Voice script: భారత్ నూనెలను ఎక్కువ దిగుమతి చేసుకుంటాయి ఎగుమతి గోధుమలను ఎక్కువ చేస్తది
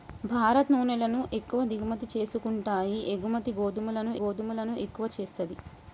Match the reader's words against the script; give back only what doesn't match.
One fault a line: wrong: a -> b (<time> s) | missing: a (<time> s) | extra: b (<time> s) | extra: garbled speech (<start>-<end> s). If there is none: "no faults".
extra: గోధుమలను (4.2 s)